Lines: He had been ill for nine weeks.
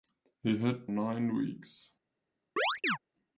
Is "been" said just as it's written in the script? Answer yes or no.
no